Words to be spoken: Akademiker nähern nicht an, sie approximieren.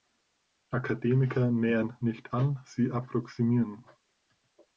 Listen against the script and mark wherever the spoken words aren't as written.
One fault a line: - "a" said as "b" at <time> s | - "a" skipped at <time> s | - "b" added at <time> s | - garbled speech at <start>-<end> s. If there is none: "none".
none